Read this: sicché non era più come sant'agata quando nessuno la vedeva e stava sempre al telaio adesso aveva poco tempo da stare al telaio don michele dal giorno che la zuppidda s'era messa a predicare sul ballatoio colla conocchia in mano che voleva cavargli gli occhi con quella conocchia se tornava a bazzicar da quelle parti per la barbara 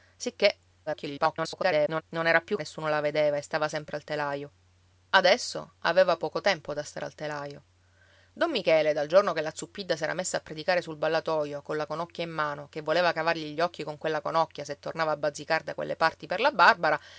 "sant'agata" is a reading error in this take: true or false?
true